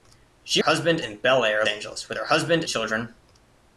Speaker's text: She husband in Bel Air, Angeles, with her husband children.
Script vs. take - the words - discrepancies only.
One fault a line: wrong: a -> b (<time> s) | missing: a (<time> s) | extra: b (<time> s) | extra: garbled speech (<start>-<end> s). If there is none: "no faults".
no faults